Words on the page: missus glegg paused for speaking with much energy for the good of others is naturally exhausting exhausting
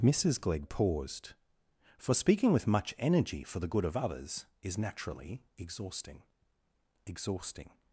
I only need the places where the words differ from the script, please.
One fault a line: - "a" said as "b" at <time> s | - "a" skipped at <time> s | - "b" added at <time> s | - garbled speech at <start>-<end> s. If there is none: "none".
none